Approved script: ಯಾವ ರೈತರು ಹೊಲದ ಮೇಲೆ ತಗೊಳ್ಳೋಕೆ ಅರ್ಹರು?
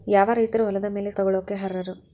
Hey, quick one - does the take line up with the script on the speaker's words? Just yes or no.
yes